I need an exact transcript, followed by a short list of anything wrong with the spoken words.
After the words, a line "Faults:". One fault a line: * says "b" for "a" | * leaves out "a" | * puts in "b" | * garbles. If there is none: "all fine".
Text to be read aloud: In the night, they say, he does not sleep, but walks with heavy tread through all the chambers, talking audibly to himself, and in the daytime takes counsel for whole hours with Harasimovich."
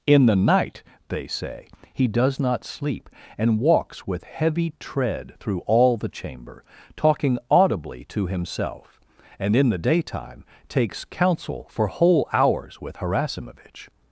In the night, they say, he does not sleep, and walks with heavy tread through all the chamber, talking audibly to himself, and in the daytime takes counsel for whole hours with Harasimovich."
Faults:
* says "and" for "but"
* says "chamber" for "chambers"